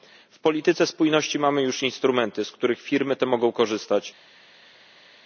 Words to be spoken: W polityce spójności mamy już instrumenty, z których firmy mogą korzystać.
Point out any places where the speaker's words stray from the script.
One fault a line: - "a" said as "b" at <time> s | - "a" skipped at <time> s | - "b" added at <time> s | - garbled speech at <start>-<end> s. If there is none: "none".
- "te" added at 3.2 s